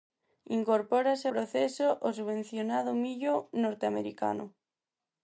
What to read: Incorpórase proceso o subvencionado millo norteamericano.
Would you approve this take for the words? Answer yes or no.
yes